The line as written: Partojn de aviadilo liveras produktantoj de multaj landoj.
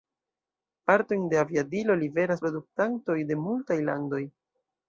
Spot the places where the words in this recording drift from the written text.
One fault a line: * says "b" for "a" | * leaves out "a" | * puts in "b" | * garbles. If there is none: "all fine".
all fine